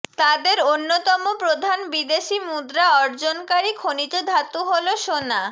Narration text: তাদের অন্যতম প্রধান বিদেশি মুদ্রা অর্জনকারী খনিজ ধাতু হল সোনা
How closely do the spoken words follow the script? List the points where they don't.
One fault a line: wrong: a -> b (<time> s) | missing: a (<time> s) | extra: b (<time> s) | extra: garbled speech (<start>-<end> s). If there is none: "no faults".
no faults